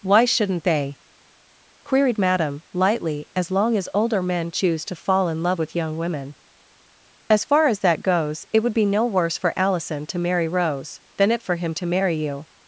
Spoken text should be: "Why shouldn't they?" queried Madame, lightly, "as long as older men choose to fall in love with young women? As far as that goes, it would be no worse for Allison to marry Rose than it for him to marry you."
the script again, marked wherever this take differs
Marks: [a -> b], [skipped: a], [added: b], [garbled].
"Why shouldn't they?" queried Madame, lightly, "as long as older men choose to fall in love with young women? As far as that goes, it would be no worse for Allison to marry Rose than it for him to marry you."